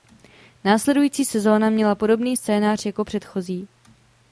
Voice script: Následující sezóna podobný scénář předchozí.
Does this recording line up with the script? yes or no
no